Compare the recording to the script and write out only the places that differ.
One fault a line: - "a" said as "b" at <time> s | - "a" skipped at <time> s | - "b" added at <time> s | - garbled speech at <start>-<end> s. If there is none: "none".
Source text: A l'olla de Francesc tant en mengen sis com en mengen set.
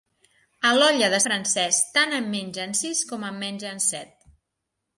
none